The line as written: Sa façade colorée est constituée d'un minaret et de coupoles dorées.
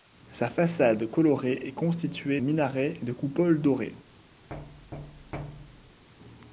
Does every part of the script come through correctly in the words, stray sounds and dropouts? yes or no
no